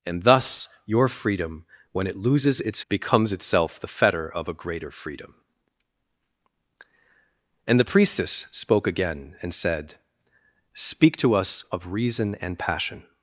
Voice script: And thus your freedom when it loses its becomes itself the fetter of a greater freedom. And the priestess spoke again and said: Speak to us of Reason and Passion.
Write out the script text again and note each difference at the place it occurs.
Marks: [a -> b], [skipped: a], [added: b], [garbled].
And thus your freedom when it loses its becomes itself the fetter of a greater freedom. And the priestess spoke again and said: Speak to us of Reason and Passion.